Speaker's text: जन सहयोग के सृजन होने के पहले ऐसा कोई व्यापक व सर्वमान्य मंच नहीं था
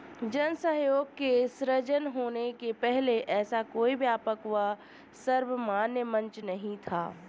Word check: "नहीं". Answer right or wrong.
right